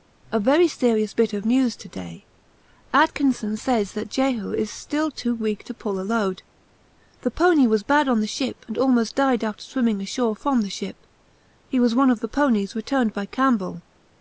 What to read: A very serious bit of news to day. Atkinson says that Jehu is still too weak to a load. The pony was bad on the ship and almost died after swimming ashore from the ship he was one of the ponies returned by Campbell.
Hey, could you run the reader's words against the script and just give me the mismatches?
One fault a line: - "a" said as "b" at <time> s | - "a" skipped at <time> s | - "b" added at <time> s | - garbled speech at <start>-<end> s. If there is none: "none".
- "pull" added at 5.7 s